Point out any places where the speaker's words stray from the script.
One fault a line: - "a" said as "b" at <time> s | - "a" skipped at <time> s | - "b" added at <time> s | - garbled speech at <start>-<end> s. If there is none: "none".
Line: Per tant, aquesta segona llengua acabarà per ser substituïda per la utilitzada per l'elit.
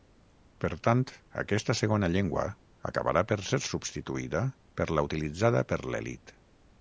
none